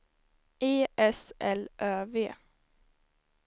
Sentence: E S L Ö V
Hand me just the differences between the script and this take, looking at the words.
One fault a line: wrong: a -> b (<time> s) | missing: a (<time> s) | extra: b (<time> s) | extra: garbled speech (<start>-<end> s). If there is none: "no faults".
no faults